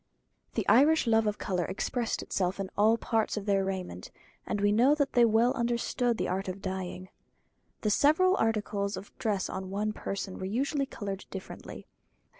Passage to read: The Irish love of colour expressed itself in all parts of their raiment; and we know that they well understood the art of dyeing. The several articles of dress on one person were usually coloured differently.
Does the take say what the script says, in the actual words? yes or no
yes